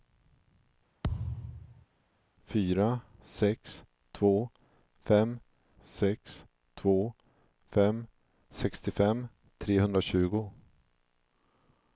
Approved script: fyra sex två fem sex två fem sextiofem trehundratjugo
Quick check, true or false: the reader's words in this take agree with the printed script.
true